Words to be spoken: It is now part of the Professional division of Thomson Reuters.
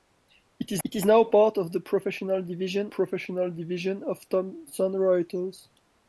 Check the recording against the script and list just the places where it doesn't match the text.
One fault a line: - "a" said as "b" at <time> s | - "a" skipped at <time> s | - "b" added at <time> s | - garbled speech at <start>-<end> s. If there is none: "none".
- "it is" added at 0.8 s
- "Professional division" added at 2.9 s